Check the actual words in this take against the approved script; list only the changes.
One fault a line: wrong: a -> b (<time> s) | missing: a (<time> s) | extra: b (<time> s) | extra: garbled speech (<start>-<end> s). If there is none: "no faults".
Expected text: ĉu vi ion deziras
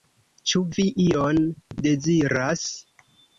no faults